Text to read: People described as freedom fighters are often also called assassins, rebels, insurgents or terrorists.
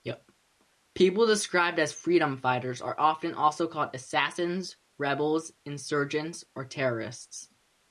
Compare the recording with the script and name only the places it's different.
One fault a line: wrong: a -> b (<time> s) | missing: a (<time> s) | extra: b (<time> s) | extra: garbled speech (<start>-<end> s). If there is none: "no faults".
no faults